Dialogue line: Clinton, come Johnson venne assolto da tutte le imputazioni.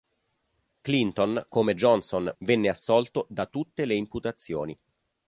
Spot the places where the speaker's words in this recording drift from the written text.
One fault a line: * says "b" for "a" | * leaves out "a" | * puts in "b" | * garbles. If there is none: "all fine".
all fine